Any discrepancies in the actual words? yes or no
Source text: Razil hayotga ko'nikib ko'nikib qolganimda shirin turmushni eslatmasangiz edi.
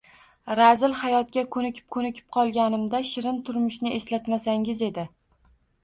no